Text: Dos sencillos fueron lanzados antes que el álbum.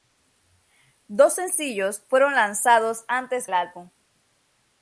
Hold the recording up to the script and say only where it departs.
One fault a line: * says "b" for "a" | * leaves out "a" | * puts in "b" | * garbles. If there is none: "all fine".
* leaves out "que"